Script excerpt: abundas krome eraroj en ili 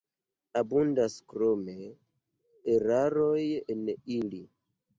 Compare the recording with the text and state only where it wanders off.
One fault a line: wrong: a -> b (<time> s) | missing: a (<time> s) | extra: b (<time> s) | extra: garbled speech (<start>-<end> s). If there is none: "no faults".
no faults